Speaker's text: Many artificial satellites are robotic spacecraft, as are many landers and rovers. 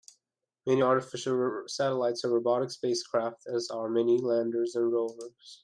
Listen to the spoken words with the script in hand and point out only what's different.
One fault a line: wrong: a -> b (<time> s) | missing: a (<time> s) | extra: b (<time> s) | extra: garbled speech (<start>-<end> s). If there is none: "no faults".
no faults